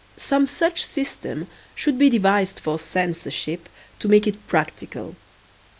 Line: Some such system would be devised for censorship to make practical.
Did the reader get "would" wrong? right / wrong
wrong